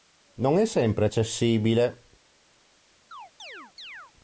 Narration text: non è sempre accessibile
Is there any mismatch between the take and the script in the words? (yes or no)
no